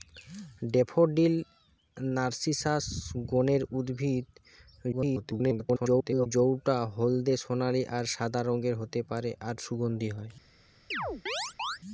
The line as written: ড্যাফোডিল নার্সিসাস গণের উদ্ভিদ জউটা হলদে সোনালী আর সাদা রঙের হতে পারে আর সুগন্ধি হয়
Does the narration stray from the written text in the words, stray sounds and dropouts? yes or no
yes